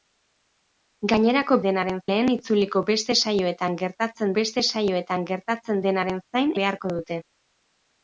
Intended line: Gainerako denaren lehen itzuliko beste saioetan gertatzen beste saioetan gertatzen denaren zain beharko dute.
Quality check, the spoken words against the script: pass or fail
pass